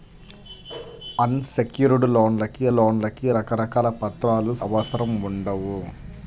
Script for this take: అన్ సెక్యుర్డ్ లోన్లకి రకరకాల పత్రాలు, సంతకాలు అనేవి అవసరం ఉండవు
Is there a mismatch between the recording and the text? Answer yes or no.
yes